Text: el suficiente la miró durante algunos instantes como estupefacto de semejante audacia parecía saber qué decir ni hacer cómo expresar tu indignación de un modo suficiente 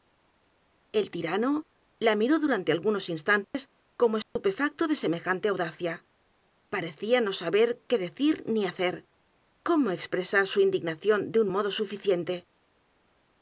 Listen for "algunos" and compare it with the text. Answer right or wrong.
right